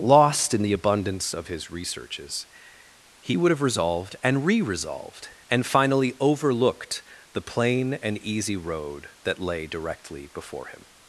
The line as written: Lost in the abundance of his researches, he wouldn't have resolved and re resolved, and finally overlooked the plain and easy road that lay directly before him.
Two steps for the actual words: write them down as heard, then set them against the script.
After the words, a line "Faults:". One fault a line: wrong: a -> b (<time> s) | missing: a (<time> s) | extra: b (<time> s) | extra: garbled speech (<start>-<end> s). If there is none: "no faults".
Lost in the abundance of his researches, he would have resolved and re resolved, and finally overlooked the plain and easy road that lay directly before him.
Faults:
wrong: wouldn't -> would (3.4 s)